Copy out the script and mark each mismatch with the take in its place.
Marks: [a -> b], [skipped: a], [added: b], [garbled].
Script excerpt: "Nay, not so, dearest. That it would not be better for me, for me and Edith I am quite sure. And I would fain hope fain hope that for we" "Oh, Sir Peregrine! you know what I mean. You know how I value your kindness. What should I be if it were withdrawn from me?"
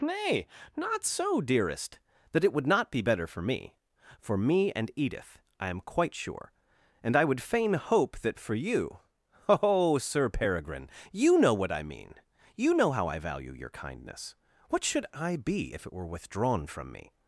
"Nay, not so, dearest. That it would not be better for me, for me and Edith I am quite sure. And I would fain hope [skipped: fain hope] that for [we" -> you] "Oh, Sir Peregrine! you know what I mean. You know how I value your kindness. What should I be if it were withdrawn from me?"